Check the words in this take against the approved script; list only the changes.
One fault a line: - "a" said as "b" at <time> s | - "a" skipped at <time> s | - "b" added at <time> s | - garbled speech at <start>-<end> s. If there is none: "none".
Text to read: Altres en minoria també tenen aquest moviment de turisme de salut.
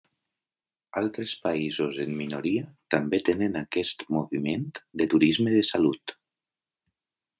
- "països" added at 1.5 s